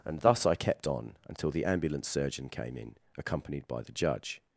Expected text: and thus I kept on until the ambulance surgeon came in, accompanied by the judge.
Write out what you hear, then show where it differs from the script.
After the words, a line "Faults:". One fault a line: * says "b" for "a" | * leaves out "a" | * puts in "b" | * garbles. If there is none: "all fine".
and thus I kept on until the ambulance surgeon came in, accompanied by the judge.
Faults:
all fine